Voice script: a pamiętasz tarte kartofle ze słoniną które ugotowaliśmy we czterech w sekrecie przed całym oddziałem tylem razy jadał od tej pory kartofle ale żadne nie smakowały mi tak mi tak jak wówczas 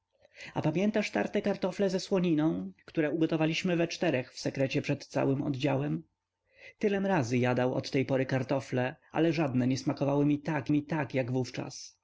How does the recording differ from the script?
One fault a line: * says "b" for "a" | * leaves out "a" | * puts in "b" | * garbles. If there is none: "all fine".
all fine